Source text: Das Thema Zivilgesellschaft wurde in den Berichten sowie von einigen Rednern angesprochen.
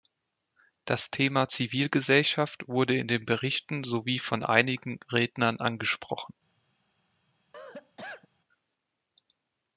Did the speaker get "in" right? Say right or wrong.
right